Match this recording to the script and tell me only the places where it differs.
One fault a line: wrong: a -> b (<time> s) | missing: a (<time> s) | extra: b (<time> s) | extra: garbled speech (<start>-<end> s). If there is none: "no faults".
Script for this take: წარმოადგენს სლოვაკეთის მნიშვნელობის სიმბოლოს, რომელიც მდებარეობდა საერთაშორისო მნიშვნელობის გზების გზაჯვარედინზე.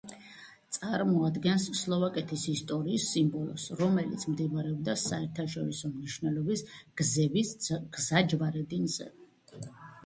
wrong: მნიშვნელობის -> ისტორიის (2.5 s)